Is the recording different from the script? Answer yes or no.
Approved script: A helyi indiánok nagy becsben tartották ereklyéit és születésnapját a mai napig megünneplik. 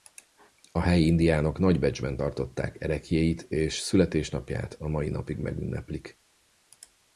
no